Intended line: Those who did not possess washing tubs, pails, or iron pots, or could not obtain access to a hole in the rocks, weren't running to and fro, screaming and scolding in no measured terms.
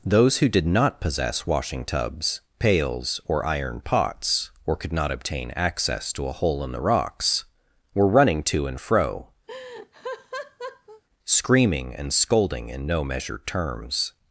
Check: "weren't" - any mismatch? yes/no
yes